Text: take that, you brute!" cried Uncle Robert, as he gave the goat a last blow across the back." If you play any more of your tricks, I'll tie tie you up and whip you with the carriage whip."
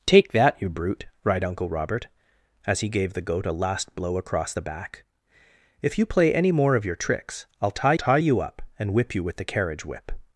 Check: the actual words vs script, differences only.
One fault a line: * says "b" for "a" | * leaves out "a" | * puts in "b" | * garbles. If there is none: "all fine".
all fine